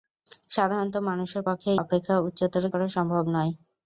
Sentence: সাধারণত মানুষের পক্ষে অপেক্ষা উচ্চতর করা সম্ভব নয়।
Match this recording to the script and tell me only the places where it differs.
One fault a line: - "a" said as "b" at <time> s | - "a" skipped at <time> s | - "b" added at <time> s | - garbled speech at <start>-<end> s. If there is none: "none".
none